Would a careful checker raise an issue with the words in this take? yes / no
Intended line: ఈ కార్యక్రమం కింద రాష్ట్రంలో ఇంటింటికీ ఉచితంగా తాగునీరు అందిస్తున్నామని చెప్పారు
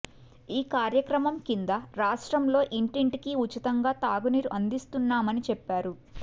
no